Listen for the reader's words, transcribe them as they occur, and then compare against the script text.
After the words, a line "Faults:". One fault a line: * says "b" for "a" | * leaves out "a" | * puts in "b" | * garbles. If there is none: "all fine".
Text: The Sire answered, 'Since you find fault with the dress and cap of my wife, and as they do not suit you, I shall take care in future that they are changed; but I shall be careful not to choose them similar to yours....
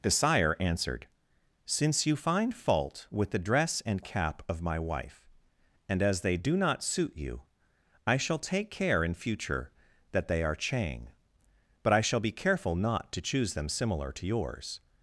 The Sire answered, 'Since you find fault with the dress and cap of my wife, and as they do not suit you, I shall take care in future that they are chang; but I shall be careful not to choose them similar to yours....
Faults:
* says "chang" for "changed"